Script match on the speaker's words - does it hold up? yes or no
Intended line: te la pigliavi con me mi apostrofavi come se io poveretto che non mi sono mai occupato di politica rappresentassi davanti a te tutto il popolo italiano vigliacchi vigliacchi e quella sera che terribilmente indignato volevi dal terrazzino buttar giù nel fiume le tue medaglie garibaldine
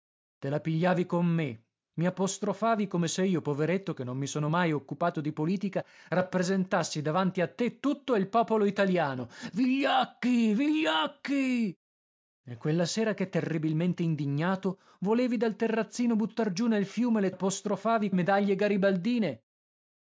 no